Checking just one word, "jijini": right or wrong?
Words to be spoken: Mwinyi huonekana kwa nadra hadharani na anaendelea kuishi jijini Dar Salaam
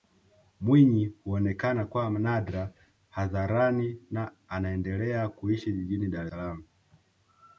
right